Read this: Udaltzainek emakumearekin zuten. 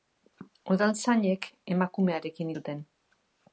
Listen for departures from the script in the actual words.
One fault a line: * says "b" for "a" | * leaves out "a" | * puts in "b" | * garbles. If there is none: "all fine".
all fine